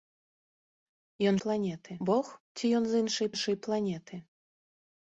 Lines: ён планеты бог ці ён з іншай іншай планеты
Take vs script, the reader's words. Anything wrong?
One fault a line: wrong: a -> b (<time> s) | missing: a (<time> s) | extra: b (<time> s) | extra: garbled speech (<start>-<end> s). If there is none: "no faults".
no faults